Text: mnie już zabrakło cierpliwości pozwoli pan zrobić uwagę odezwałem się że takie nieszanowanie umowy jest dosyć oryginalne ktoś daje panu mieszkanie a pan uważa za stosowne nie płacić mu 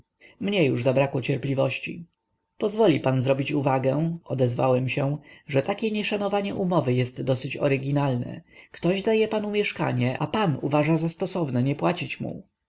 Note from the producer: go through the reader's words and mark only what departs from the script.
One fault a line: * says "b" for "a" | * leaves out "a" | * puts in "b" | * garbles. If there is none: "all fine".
all fine